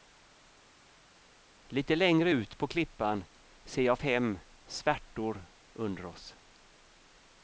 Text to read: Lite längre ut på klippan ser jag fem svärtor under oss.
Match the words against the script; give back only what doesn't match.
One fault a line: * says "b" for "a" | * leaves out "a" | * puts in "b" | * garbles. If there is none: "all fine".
all fine